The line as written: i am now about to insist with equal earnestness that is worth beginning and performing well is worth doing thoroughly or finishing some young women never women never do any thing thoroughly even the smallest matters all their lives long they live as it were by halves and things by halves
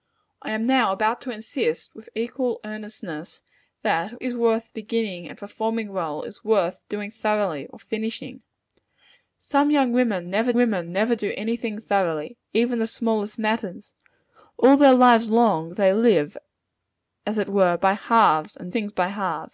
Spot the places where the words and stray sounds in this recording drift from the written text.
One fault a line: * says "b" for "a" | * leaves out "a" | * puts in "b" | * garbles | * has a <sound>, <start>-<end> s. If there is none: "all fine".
all fine